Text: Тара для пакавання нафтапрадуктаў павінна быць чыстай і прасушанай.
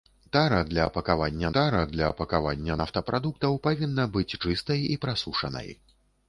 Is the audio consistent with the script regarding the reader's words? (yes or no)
no